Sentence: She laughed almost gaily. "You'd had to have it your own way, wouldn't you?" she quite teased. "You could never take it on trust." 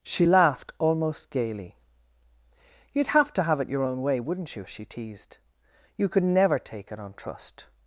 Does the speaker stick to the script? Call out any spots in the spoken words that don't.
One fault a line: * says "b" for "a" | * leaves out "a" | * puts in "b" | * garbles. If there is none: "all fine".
* says "have" for "had"
* leaves out "quite"